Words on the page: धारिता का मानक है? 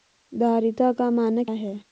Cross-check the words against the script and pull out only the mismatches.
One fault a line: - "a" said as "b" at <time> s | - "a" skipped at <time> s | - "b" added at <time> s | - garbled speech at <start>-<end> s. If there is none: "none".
none